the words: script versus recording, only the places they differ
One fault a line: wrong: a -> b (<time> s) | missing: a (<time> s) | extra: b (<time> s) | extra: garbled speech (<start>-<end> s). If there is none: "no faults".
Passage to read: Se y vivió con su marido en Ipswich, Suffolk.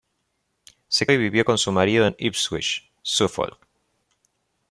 no faults